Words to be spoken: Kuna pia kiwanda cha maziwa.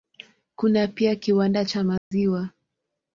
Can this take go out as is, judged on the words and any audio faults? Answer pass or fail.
fail